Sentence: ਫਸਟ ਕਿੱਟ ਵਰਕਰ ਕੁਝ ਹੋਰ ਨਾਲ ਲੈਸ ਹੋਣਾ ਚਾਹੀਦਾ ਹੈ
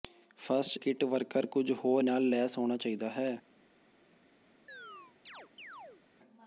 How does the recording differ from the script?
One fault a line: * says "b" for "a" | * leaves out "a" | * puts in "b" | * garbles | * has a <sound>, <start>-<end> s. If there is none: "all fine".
* has a chirp, 4.7-6.0 s